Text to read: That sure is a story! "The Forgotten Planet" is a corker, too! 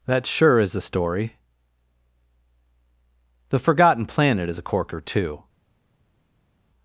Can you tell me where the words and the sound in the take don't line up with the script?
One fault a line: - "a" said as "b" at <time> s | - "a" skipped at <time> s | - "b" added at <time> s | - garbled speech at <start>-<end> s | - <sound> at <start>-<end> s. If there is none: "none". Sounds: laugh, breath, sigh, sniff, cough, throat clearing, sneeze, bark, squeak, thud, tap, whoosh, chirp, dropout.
none